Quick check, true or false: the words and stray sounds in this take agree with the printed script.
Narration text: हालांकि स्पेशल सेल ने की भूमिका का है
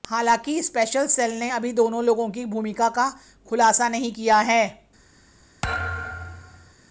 false